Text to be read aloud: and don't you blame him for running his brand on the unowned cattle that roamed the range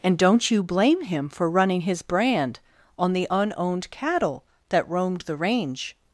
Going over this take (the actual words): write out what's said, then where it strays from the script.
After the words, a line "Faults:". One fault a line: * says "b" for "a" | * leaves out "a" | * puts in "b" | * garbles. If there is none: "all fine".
and don't you blame him for running his brand on the unowned cattle that roamed the range
Faults:
all fine